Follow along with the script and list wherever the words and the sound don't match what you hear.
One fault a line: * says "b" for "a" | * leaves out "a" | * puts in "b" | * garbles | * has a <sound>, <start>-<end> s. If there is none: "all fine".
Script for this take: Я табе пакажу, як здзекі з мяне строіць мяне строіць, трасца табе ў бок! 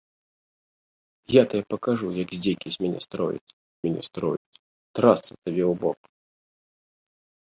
* has a dropout, 4.4-4.5 s